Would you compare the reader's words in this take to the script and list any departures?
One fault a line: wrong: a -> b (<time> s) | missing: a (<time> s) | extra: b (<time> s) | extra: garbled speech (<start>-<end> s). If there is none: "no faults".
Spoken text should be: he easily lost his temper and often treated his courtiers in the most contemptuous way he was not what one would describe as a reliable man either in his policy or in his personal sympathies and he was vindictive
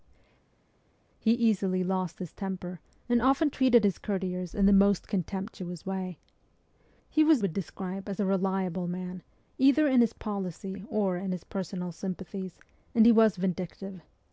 missing: not what one (7.4 s)